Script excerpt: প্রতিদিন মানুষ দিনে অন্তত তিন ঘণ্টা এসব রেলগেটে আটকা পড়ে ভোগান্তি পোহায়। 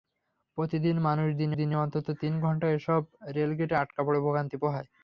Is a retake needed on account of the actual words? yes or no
yes